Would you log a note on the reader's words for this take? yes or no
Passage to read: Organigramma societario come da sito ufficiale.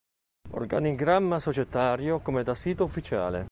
no